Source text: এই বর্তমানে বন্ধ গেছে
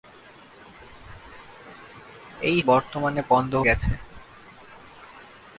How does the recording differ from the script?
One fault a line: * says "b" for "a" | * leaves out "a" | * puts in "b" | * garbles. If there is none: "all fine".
all fine